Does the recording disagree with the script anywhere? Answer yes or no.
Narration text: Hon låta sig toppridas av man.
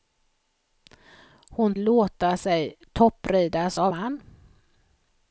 no